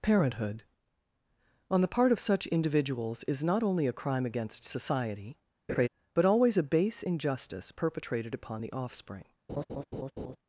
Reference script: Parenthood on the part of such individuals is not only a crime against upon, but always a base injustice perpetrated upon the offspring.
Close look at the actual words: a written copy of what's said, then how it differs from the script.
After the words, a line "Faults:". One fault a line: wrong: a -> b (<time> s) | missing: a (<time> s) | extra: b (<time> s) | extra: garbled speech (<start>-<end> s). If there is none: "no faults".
Parenthood on the part of such individuals is not only a crime against society, but always a base injustice perpetrated upon the offspring.
Faults:
wrong: upon -> society (4.7 s)